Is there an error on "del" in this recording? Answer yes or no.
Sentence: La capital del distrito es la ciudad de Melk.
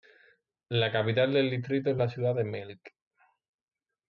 no